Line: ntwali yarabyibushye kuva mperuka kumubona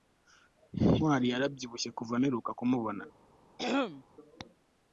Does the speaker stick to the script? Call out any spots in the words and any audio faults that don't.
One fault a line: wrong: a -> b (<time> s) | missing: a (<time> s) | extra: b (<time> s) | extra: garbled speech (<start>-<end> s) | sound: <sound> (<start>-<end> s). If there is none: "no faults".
sound: throat clearing (3.6-4.0 s)